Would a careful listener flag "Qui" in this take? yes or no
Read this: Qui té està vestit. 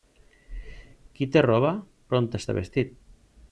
no